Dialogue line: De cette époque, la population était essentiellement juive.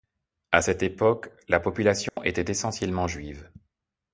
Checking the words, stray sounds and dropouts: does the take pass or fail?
fail